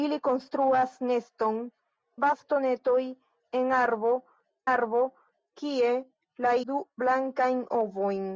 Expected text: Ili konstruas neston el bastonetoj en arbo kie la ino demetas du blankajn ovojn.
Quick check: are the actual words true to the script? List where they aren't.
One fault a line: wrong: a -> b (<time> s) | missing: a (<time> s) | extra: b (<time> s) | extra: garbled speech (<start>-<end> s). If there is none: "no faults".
missing: el (1.6 s)
extra: arbo (4.7 s)
missing: ino demetas (6.5 s)